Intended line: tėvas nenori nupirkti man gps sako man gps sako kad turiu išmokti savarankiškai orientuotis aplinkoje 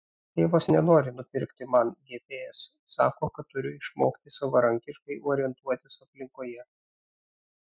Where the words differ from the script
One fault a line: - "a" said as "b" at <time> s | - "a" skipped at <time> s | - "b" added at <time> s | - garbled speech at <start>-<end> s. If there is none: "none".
- "man gps sako" skipped at 3.3 s